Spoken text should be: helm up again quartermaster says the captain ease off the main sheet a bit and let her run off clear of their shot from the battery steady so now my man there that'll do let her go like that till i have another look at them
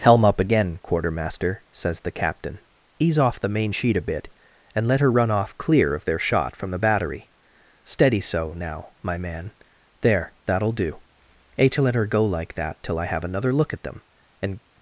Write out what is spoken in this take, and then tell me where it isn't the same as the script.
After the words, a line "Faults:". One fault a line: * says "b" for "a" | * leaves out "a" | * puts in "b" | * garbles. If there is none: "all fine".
helm up again quartermaster says the captain ease off the main sheet a bit and let her run off clear of their shot from the battery steady so now my man there that'll do a to let her go like that till i have another look at them and
Faults:
* puts in "a to"
* puts in "and"